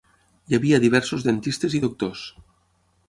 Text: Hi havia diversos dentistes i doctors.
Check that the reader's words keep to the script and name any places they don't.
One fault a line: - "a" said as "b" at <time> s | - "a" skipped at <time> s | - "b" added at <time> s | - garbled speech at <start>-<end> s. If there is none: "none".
none